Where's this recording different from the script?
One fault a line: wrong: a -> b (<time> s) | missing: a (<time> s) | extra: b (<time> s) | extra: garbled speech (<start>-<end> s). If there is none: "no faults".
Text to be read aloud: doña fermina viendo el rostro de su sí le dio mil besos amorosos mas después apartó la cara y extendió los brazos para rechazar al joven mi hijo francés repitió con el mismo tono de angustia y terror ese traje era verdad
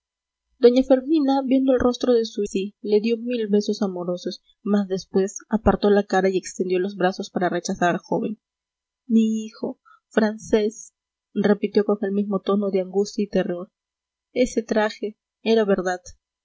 no faults